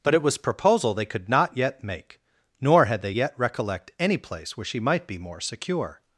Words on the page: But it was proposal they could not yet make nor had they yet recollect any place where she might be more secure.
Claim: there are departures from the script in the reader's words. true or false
false